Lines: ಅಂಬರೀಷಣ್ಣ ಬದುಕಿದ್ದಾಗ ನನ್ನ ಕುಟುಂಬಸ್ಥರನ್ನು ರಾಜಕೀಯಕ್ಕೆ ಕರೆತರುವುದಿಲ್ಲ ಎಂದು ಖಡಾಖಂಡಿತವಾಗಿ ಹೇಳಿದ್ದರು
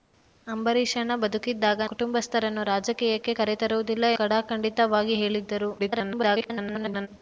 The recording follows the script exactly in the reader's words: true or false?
false